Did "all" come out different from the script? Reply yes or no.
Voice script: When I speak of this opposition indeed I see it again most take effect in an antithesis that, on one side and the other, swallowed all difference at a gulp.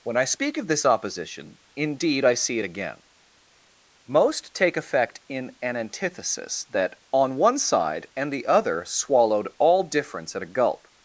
no